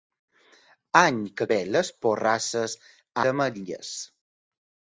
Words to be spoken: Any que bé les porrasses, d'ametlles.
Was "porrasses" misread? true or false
false